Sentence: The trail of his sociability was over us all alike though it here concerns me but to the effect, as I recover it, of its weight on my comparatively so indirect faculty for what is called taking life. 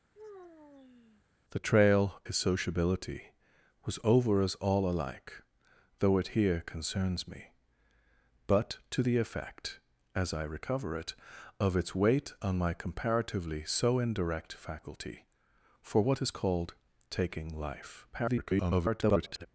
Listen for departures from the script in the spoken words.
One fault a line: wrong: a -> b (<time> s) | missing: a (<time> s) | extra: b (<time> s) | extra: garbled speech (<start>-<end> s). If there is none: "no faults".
missing: of (2.2 s)
extra: garbled speech (18.1-19.5 s)